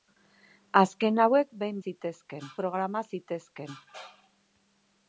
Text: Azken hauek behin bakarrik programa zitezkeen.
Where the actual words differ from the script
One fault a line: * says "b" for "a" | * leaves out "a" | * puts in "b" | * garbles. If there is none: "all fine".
* says "zitezkeen" for "bakarrik"